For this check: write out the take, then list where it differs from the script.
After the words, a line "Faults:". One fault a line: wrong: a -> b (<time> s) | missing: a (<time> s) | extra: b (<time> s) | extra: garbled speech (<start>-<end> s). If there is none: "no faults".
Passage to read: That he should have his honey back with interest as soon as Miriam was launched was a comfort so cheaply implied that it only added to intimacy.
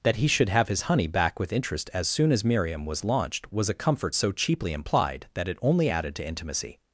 That he should have his honey back with interest as soon as Miriam was launched was a comfort so cheaply implied that it only added to intimacy.
Faults:
no faults